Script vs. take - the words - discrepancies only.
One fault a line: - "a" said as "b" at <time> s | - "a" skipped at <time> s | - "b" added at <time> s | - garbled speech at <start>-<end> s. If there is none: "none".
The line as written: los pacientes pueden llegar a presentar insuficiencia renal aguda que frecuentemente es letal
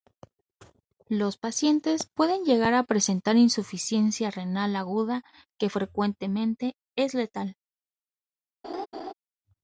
none